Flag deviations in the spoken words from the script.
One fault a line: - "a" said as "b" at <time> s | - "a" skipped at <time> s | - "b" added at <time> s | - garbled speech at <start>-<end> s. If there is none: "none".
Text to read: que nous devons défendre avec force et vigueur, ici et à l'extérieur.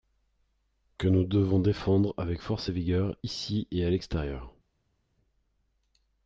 none